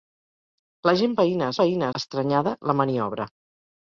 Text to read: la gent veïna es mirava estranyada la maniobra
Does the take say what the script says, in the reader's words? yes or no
no